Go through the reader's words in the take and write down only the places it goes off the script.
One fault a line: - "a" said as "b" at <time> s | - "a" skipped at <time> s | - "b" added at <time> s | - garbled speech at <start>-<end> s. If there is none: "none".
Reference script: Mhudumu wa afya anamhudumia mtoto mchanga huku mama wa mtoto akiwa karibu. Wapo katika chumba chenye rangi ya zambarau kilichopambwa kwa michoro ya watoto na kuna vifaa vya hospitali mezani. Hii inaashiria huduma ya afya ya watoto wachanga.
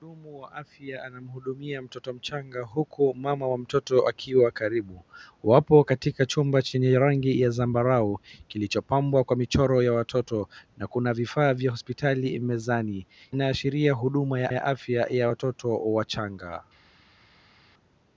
- "Hii" skipped at 13.1 s
- "ya" added at 14.5 s